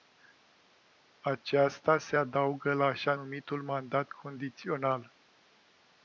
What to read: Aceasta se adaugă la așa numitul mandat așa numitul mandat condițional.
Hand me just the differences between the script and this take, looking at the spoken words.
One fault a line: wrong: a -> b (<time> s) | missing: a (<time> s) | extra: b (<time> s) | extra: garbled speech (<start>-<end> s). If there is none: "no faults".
missing: așa numitul mandat (4.1 s)